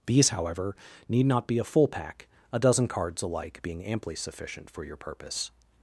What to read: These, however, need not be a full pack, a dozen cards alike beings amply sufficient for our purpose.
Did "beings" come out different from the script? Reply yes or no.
yes